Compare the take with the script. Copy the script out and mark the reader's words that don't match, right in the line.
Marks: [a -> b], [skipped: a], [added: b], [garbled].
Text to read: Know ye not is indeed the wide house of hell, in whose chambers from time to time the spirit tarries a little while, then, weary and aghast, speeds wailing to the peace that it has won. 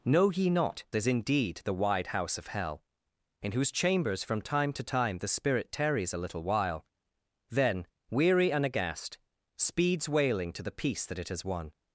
Know ye not is indeed the wide house of hell, in whose chambers from time to time the spirit tarries a little while, then, weary and aghast, speeds wailing to the peace that it has won.